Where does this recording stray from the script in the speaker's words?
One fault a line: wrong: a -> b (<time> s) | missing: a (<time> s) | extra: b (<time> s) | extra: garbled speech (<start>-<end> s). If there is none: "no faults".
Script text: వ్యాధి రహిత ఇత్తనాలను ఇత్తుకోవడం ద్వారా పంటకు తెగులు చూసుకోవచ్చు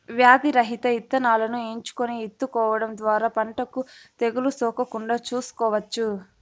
extra: ఎంచుకొని (1.7 s)
extra: సోకకుండా (4.5 s)